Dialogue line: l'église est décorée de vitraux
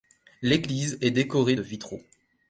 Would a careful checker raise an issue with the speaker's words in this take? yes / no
no